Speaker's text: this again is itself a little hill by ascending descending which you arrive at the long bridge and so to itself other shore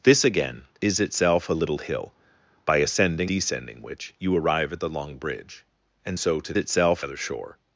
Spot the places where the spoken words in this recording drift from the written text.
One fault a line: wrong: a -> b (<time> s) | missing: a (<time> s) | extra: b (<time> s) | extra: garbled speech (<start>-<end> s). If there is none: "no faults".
no faults